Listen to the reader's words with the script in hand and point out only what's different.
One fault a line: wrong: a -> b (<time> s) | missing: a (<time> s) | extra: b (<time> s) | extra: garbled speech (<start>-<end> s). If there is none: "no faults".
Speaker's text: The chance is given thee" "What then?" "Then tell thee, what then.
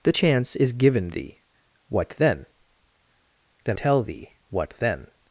no faults